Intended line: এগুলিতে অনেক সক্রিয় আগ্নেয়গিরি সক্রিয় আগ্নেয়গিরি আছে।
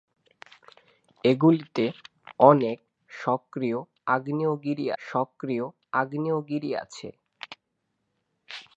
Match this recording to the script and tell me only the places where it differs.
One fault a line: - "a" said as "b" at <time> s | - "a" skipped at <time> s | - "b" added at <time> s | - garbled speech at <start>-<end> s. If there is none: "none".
none